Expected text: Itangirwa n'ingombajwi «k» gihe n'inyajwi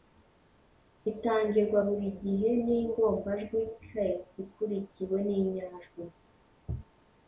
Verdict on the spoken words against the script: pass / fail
fail